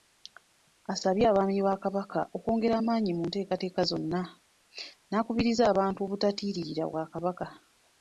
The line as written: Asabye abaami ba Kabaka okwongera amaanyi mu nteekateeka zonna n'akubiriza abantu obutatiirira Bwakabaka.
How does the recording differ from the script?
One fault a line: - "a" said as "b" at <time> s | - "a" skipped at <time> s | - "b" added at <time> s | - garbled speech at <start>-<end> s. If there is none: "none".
none